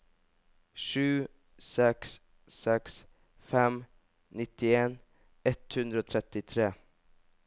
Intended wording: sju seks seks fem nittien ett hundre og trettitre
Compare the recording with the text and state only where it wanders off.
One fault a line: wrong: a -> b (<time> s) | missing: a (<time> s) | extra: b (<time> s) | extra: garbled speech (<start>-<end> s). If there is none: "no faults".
no faults